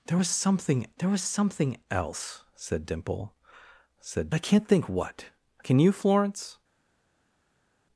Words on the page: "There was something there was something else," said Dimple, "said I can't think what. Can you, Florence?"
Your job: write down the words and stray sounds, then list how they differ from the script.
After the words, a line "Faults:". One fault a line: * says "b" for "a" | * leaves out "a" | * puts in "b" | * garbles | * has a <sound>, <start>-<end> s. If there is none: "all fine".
"There was something there was something else," said Dimple, "said I can't think what. Can you, Florence?"
Faults:
all fine